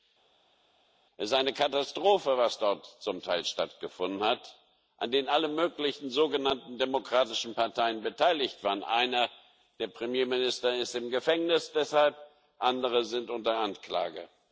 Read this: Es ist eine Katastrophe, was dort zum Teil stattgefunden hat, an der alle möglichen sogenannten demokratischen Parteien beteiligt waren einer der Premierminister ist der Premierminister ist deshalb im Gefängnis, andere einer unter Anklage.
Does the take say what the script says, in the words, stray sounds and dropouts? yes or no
no